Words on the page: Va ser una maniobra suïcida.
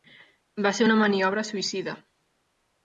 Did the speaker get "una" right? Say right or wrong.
right